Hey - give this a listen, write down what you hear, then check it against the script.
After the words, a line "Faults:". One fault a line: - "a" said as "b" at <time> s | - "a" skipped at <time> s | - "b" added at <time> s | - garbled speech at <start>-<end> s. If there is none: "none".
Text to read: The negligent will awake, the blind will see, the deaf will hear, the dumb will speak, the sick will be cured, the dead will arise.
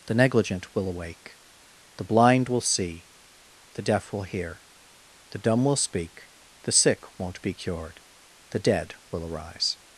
The negligent will awake, the blind will see, the deaf will hear, the dumb will speak, the sick won't be cured, the dead will arise.
Faults:
- "will" said as "won't" at 7.2 s